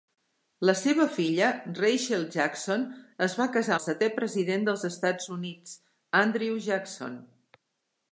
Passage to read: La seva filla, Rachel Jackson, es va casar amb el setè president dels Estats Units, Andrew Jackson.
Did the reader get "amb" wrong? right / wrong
wrong